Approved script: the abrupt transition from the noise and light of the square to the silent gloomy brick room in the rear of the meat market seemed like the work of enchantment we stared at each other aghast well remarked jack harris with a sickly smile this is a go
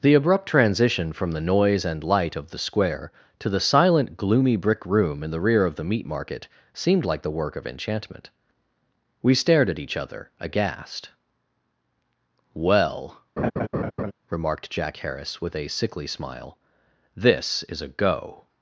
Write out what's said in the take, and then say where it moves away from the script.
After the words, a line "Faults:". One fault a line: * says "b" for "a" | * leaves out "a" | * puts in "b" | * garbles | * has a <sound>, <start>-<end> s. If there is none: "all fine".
the abrupt transition from the noise and light of the square to the silent gloomy brick room in the rear of the meat market seemed like the work of enchantment we stared at each other aghast well remarked jack harris with a sickly smile this is a go
Faults:
* has a laugh, 13.4-14.1 s